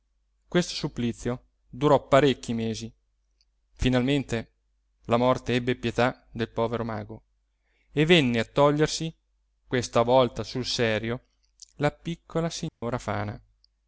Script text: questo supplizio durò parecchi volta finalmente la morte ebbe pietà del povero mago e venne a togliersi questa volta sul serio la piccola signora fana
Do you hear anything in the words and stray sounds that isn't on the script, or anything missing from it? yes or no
yes